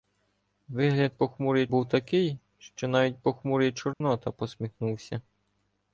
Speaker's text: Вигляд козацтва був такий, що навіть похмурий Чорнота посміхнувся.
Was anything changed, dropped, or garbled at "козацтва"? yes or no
yes